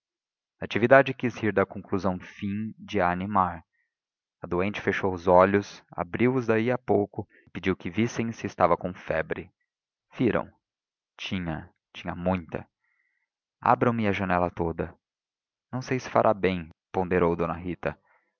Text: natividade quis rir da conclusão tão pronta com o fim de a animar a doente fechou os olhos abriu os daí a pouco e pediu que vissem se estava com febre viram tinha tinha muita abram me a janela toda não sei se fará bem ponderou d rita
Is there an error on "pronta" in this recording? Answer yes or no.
yes